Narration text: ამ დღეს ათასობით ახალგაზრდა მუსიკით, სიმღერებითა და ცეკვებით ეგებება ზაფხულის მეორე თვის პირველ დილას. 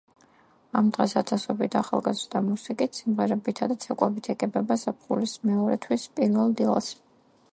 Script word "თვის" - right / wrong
right